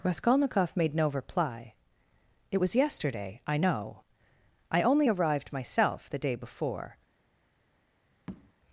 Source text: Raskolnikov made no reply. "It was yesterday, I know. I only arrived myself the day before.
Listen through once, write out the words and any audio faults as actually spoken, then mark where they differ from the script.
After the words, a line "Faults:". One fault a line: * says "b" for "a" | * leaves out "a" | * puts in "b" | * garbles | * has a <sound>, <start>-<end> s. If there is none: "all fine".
Raskolnikov made no reply. "It was yesterday, I know. I only arrived myself the day before.
Faults:
* has a tap, 8.3-8.5 s